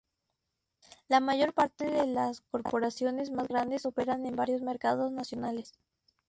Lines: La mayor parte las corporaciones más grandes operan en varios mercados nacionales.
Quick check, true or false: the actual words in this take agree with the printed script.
false